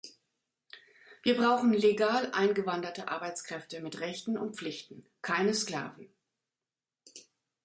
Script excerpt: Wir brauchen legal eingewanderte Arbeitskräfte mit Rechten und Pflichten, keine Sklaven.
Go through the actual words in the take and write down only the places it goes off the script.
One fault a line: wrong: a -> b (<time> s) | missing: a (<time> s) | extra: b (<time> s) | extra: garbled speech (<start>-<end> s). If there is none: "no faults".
no faults